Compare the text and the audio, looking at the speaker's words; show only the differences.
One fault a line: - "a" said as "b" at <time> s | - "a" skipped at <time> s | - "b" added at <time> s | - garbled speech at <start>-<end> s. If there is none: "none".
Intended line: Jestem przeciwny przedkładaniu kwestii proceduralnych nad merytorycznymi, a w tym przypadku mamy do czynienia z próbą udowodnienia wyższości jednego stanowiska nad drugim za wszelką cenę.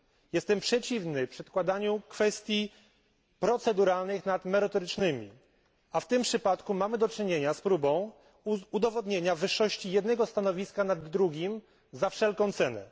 none